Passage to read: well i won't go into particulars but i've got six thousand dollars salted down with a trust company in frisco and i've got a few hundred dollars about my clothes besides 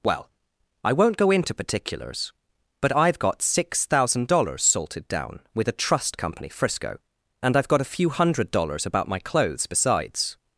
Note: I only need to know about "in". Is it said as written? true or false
false